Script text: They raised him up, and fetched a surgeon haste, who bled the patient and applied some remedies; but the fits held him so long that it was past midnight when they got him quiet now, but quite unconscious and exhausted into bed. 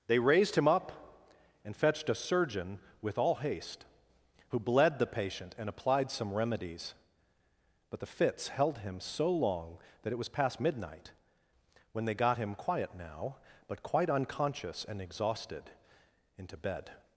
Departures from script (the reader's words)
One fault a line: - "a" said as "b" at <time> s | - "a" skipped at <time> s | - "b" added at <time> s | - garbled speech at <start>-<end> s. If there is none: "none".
- "with all" added at 3.0 s